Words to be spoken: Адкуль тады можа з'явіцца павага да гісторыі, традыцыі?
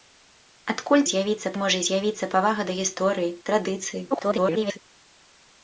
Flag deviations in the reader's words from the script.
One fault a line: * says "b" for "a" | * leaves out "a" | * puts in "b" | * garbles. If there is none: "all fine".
* says "з'явіцца" for "тады"
* garbles